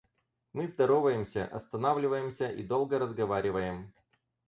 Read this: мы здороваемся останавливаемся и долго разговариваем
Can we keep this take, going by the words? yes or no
yes